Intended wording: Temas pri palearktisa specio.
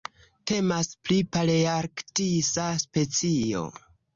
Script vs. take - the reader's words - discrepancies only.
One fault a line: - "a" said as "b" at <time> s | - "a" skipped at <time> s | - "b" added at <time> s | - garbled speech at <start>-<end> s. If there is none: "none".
none